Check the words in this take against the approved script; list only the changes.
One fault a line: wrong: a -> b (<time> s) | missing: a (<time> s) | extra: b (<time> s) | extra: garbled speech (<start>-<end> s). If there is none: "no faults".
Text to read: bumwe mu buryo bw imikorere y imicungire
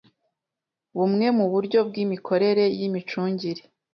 no faults